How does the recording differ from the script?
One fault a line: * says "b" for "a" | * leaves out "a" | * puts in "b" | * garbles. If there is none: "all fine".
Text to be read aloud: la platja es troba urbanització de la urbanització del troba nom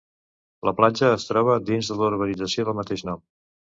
* says "dins" for "urbanització"
* says "mateix" for "troba"